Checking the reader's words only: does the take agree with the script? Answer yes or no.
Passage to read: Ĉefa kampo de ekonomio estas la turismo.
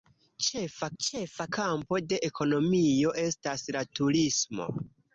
no